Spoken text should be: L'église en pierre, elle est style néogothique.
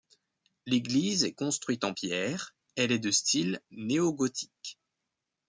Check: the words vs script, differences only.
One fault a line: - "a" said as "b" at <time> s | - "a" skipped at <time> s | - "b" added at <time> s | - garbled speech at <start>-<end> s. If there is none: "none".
- "est construite" added at 1.2 s
- "de" added at 3.0 s